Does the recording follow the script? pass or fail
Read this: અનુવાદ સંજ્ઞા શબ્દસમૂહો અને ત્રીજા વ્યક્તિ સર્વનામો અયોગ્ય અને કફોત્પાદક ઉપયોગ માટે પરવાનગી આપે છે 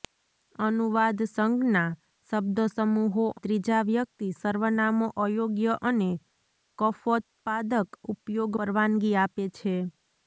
fail